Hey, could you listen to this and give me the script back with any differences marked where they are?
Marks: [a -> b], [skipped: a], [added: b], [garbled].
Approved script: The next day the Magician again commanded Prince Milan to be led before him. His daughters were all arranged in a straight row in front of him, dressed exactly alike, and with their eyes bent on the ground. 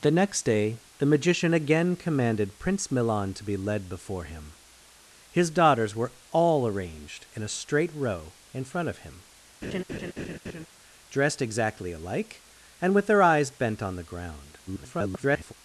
The next day the Magician again commanded Prince Milan to be led before him. His daughters were all arranged in a straight row in front of him, dressed exactly alike, and with their eyes bent on the ground. [garbled]